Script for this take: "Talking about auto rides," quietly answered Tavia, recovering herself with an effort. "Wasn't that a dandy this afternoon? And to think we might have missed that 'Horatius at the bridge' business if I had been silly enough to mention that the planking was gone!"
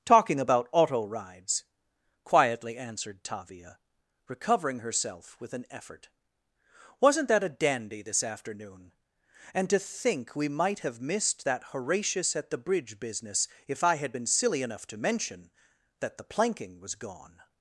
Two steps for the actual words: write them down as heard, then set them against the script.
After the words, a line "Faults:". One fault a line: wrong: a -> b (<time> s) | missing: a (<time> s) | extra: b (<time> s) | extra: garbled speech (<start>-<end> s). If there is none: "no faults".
"Talking about auto rides," quietly answered Tavia, recovering herself with an effort. "Wasn't that a dandy this afternoon? And to think we might have missed that 'Horatius at the bridge' business if I had been silly enough to mention that the planking was gone!"
Faults:
no faults